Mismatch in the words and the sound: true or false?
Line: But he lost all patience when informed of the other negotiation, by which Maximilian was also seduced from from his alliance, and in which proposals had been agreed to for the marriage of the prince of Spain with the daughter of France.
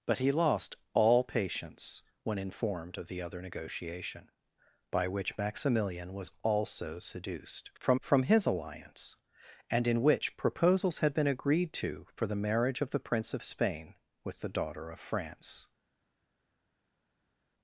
false